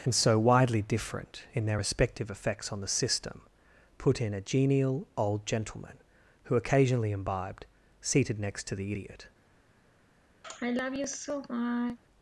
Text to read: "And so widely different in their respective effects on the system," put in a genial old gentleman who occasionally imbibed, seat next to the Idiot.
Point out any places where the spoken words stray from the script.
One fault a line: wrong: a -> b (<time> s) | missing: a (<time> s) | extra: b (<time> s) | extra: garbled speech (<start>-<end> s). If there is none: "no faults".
wrong: seat -> seated (8.0 s)